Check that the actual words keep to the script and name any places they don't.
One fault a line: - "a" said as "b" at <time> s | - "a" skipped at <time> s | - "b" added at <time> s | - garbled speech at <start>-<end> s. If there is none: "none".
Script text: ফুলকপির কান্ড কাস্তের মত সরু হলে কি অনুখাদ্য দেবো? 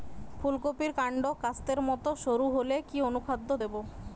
none